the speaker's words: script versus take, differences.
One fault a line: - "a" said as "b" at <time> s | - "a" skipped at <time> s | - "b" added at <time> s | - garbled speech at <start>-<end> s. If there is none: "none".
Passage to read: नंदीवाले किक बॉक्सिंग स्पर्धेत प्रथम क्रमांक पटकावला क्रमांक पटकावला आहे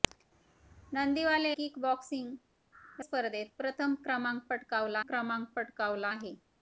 none